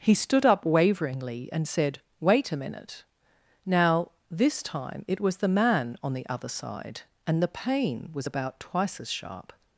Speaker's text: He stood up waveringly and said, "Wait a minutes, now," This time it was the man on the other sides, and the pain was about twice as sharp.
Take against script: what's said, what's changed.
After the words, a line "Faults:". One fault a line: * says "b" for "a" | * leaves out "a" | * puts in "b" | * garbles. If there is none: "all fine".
He stood up waveringly and said, "Wait a minute, now," This time it was the man on the other side, and the pain was about twice as sharp.
Faults:
* says "minute" for "minutes"
* says "side" for "sides"